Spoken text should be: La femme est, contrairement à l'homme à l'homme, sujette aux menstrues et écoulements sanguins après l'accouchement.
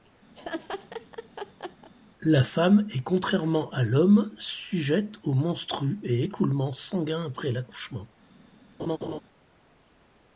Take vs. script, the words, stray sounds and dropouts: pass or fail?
fail